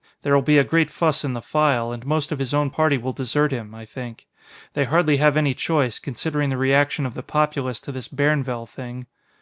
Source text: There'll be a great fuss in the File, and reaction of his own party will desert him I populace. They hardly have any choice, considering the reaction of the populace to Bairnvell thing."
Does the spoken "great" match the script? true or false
true